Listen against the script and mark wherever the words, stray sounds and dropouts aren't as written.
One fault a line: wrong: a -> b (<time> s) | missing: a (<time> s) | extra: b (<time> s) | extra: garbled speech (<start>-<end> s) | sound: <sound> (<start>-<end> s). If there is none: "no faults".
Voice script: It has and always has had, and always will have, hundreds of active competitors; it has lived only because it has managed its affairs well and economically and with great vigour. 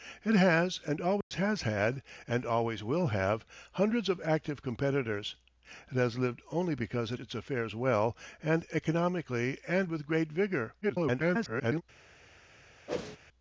sound: dropout (1.2-1.3 s)
missing: has managed (7.2 s)
extra: garbled speech (10.8-11.8 s)
sound: whoosh (12.9-13.2 s)